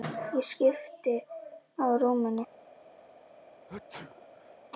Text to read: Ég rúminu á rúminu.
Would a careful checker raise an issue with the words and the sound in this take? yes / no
yes